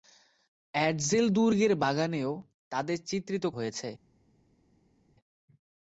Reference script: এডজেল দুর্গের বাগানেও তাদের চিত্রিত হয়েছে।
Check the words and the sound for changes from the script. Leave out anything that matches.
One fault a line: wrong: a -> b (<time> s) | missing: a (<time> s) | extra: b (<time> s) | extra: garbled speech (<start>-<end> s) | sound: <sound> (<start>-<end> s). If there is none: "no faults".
no faults